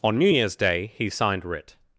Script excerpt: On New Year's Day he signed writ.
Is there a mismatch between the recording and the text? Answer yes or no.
no